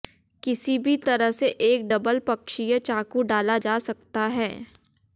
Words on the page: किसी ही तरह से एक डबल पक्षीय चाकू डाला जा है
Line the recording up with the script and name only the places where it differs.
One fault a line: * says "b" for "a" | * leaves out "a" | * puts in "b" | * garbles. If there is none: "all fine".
* says "भी" for "ही"
* puts in "सकता"